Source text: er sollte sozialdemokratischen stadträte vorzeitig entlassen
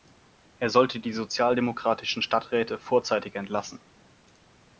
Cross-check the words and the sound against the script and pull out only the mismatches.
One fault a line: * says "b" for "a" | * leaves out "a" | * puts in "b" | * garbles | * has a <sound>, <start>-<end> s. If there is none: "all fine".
* puts in "die"